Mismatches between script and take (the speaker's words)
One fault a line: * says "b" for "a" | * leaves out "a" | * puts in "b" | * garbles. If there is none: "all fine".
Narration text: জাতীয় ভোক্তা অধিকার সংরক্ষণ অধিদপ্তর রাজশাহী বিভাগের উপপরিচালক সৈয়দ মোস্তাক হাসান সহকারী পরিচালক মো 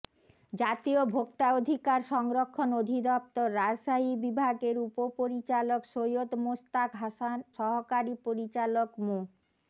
all fine